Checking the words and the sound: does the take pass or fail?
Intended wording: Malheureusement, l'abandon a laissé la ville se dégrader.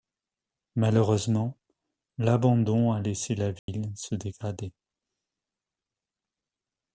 fail